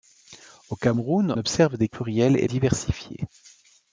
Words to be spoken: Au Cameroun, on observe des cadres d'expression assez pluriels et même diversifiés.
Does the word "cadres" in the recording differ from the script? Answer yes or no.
yes